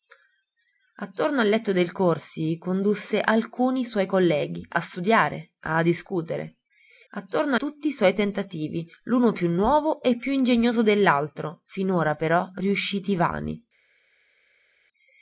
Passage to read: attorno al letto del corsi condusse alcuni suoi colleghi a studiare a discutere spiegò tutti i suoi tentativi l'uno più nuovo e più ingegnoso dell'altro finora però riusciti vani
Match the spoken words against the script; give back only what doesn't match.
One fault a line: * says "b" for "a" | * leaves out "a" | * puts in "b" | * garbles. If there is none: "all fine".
* says "attorno" for "spiegò"